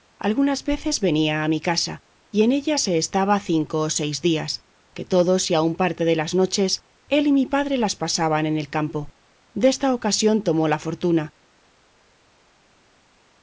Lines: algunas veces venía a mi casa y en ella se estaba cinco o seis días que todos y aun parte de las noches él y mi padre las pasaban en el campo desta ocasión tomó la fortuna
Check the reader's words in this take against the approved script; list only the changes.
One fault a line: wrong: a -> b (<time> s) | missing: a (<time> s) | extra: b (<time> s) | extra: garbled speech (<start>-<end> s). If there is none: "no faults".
no faults